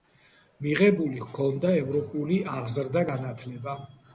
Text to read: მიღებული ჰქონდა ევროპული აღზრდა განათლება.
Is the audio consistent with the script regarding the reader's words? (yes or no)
yes